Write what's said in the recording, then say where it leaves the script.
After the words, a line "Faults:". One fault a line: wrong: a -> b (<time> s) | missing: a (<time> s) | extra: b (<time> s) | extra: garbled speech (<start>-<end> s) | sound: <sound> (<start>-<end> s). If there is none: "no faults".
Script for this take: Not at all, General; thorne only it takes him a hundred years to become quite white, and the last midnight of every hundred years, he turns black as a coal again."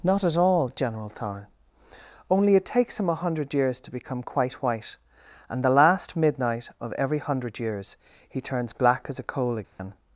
Not at all, General; thorne only it takes him a hundred years to become quite white, and the last midnight of every hundred years, he turns black as a coal again."
Faults:
sound: dropout (9.6-9.8 s)